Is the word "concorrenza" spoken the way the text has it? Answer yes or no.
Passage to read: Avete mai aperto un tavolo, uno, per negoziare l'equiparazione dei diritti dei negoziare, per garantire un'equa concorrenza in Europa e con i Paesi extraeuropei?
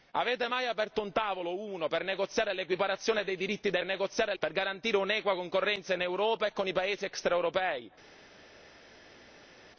yes